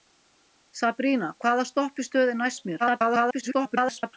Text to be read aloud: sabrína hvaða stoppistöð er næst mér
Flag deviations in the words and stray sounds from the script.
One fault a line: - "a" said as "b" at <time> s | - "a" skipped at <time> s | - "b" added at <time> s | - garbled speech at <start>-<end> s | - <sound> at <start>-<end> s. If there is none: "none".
- garbled speech at 2.8-4.1 s